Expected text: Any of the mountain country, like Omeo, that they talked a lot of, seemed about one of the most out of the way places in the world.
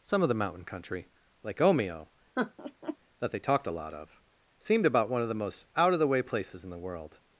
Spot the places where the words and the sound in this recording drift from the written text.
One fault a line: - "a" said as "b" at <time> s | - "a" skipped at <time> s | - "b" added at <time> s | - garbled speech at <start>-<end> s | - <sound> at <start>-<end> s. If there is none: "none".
- "Any" said as "Some" at 0.0 s
- laugh at 2.4-3.0 s